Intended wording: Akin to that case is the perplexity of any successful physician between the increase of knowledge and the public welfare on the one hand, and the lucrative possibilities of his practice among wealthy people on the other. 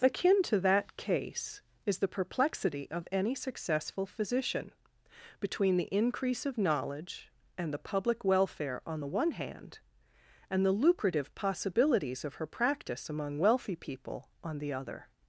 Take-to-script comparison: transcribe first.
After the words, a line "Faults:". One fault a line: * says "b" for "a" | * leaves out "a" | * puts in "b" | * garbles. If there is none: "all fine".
Akin to that case is the perplexity of any successful physician between the increase of knowledge and the public welfare on the one hand, and the lucrative possibilities of her practice among wealthy people on the other.
Faults:
* says "her" for "his"